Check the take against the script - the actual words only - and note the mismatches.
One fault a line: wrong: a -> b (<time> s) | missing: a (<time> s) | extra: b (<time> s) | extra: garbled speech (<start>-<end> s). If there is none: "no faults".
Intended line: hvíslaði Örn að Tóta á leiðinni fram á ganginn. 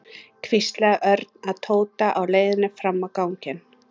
no faults